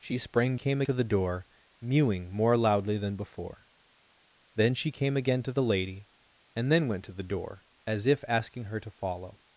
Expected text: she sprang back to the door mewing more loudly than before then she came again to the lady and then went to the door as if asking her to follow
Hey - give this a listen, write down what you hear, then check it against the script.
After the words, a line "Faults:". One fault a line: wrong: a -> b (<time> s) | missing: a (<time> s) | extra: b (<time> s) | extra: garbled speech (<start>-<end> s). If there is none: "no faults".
she sprang came to the door mewing more loudly than before then she came again to the lady and then went to the door as if asking her to follow
Faults:
wrong: back -> came (0.5 s)